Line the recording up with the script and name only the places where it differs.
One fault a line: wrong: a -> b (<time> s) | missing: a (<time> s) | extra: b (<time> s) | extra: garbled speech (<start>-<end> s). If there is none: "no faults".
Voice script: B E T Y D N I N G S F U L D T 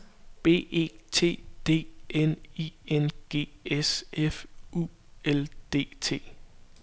missing: Y (1.4 s)